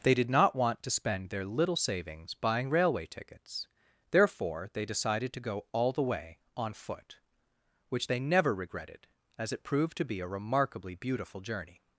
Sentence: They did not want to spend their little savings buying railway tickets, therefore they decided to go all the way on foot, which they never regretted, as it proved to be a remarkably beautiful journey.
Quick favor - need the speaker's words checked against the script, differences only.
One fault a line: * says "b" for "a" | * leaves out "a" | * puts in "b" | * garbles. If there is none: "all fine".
all fine